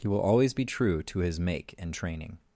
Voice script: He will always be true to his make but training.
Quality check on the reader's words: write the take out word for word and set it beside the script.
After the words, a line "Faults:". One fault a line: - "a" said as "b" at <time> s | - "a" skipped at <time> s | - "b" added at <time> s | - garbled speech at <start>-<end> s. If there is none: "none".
He will always be true to his make and training.
Faults:
- "but" said as "and" at 1.8 s